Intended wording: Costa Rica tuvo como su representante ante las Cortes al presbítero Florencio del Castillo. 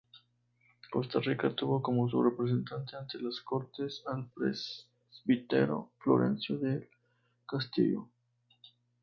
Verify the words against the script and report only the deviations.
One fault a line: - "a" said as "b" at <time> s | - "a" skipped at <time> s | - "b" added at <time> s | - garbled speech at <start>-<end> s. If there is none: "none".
none